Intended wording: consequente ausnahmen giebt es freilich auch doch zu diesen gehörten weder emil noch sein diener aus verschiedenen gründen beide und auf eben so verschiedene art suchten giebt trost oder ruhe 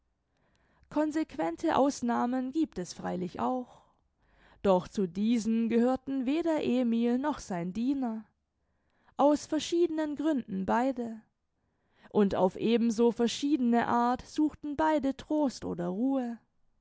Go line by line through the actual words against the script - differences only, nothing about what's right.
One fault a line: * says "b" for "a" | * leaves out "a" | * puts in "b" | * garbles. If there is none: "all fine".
* says "beide" for "giebt"